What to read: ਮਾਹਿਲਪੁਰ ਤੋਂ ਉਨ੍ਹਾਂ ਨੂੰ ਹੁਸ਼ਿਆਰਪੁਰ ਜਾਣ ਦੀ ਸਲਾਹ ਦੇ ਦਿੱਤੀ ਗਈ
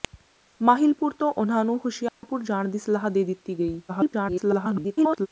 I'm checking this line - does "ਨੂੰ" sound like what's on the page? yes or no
yes